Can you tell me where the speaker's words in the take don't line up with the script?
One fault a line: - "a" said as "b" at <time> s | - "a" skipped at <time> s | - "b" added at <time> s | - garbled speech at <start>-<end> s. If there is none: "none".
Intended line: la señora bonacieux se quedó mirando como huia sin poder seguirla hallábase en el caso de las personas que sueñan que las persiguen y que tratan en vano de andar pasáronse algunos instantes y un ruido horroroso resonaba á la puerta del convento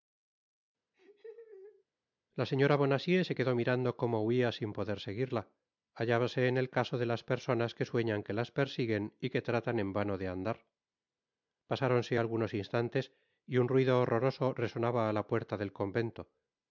none